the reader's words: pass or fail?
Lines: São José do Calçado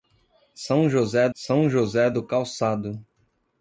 fail